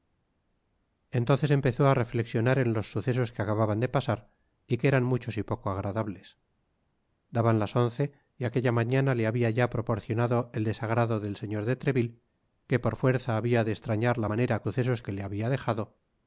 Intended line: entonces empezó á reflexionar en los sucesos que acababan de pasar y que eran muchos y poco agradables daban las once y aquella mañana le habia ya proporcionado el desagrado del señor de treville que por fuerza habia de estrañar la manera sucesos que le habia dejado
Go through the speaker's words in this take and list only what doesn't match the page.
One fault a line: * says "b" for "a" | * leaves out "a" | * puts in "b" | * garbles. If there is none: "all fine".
all fine